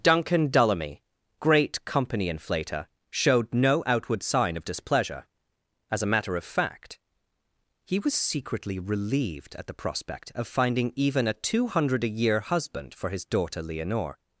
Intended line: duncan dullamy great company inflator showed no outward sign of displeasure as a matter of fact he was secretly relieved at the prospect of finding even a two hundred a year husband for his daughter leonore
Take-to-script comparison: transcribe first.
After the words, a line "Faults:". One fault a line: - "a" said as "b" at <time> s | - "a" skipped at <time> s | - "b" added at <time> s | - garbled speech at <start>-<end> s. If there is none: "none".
duncan dullamy great company inflator showed no outward sign of displeasure as a matter of fact he was secretly relieved at the prospect of finding even a two hundred a year husband for his daughter leonore
Faults:
none